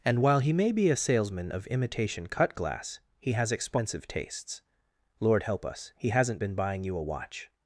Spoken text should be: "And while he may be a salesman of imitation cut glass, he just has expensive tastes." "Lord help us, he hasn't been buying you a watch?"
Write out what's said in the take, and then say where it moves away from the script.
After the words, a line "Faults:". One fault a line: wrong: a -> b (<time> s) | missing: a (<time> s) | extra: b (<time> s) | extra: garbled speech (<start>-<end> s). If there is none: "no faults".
"And while he may be a salesman of imitation cut glass, he has expensive tastes." "Lord help us, he hasn't been buying you a watch?"
Faults:
missing: just (3.3 s)